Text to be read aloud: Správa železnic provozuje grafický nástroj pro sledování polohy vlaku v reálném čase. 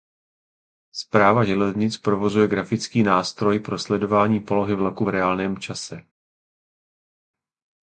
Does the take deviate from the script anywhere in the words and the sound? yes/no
no